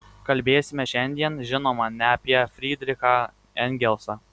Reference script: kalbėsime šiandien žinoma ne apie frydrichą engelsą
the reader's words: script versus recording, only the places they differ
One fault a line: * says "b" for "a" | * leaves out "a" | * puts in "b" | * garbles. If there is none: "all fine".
all fine